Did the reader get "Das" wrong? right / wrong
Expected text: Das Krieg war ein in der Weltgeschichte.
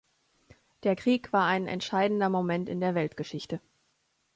wrong